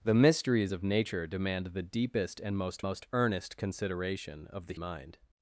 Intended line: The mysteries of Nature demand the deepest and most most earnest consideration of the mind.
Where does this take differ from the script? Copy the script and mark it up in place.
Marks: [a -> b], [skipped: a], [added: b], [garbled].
The mysteries of Nature demand the deepest and most most earnest consideration of the mind.